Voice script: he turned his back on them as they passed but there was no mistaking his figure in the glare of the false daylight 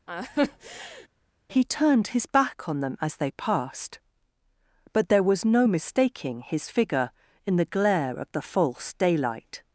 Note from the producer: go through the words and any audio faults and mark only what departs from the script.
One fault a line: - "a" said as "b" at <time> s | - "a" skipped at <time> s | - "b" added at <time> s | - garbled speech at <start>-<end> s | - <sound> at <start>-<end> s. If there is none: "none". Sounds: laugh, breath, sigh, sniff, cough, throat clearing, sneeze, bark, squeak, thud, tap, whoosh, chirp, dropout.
- laugh at 0.1-1.1 s